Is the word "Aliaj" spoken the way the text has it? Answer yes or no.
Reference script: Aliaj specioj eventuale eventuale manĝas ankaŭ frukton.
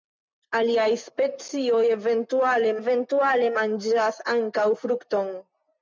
yes